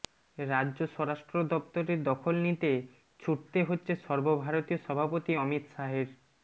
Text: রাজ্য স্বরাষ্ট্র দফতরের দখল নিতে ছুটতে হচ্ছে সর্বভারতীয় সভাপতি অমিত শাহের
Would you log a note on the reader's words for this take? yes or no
no